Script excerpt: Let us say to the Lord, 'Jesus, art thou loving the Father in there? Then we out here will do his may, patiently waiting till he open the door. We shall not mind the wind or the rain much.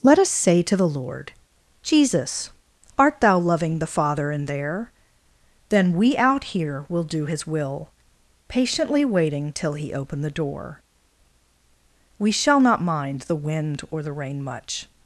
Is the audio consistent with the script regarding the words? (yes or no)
no